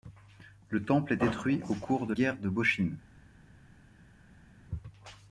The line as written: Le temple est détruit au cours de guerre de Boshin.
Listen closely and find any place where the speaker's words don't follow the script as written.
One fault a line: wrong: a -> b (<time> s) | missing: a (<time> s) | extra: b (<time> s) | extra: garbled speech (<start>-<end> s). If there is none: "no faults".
no faults